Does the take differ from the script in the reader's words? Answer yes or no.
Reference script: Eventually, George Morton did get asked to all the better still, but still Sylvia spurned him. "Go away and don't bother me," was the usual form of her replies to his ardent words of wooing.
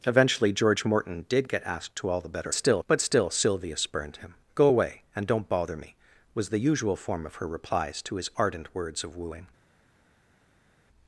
no